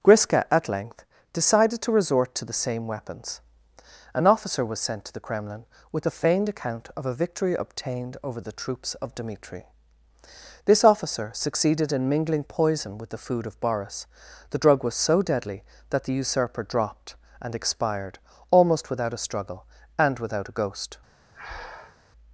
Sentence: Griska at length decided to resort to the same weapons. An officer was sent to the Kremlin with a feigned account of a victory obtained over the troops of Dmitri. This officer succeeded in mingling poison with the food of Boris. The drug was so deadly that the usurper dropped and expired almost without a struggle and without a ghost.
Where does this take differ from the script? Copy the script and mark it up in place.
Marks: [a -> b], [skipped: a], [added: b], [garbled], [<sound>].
Griska at length decided to resort to the same weapons. An officer was sent to the Kremlin with a feigned account of a victory obtained over the troops of Dmitri. This officer succeeded in mingling poison with the food of Boris. The drug was so deadly that the usurper dropped and expired almost without a struggle and without a ghost. [breath]